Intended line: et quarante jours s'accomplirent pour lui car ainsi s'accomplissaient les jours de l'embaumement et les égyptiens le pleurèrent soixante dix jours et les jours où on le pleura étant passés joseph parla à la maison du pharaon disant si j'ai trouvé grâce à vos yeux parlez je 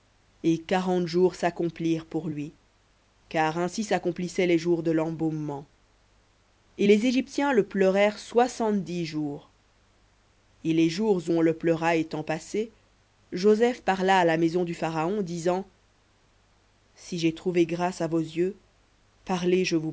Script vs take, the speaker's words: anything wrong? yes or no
no